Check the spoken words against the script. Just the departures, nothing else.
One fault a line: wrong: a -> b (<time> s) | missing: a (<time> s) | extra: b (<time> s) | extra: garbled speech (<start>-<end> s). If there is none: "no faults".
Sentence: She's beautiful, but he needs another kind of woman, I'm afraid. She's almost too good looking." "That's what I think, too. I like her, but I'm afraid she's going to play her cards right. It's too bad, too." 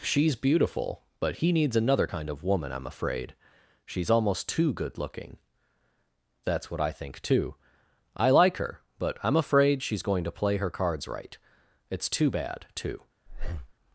no faults